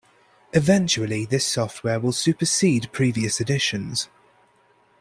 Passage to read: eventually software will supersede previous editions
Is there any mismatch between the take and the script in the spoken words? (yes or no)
yes